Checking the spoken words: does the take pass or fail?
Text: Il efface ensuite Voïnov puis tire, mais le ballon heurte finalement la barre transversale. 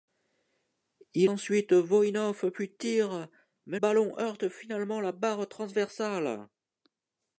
fail